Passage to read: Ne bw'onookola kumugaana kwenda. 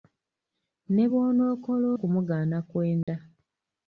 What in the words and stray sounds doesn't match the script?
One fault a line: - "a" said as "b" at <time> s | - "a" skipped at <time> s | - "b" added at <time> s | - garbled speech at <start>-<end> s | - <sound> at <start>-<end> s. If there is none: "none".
- dropout at 3.0-3.1 s